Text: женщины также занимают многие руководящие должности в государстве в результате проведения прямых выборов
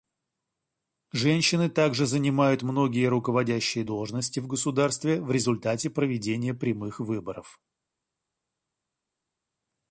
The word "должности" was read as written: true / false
true